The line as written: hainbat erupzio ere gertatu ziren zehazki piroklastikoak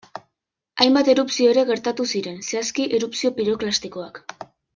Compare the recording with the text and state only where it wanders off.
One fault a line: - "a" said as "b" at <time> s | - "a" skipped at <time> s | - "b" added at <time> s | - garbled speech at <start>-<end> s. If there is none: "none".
- "erupzio" added at 3.0 s